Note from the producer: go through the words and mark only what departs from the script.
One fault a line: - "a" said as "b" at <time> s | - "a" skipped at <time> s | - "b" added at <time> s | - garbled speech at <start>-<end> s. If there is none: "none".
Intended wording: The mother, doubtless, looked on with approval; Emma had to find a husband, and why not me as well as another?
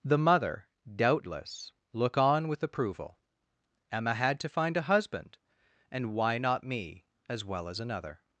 - "looked" said as "look" at 1.9 s